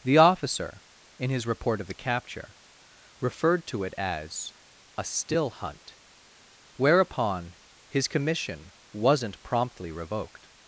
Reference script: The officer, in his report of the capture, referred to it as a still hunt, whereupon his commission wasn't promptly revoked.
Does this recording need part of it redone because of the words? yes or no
no